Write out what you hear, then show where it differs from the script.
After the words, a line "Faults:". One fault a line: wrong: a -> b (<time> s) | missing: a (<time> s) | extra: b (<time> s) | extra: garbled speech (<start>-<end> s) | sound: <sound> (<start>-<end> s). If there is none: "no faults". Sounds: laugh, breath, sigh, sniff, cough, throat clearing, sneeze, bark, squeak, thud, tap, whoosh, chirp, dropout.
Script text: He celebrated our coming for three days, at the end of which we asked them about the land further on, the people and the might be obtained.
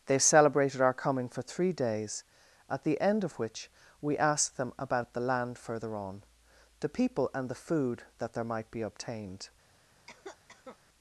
They celebrated our coming for three days, at the end of which we asked them about the land further on, the people and the food that there might be obtained.
Faults:
wrong: He -> They (0.1 s)
extra: food that there (7.5 s)
sound: cough (10.1-10.8 s)